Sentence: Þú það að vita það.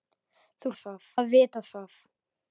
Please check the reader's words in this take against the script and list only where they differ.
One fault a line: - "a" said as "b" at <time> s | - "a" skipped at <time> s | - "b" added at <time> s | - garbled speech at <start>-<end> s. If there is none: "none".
none